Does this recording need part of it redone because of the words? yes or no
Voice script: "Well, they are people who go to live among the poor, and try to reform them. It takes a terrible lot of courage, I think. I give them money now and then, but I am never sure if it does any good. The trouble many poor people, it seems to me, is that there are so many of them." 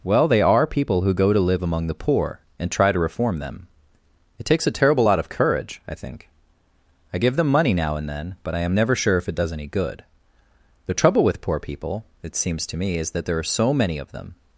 yes